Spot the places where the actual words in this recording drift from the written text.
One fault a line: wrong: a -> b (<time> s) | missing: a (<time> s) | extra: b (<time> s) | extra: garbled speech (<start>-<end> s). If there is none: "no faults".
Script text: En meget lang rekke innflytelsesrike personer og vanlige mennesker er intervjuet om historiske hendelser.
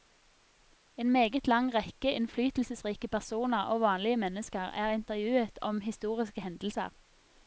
no faults